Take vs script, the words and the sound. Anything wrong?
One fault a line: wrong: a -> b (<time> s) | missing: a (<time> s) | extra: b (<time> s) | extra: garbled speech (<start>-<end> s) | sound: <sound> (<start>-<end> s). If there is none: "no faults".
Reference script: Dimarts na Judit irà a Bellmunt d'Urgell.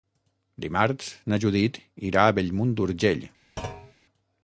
sound: thud (3.6-3.9 s)